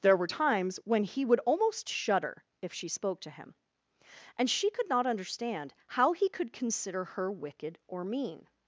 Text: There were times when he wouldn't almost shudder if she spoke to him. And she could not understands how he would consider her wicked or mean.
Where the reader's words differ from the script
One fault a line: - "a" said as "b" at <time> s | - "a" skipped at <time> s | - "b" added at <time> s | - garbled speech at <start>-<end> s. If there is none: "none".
- "wouldn't" said as "would" at 1.2 s
- "understands" said as "understand" at 5.1 s
- "would" said as "could" at 6.3 s